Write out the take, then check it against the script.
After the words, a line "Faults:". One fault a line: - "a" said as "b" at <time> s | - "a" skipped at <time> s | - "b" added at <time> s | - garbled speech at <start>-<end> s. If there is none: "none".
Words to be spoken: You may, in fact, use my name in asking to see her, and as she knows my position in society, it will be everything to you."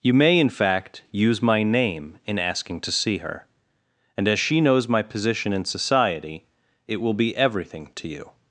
You may, in fact, use my name in asking to see her, and as she knows my position in society, it will be everything to you."
Faults:
none